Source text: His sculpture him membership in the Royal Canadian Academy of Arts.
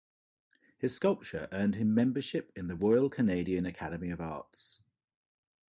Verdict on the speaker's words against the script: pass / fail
fail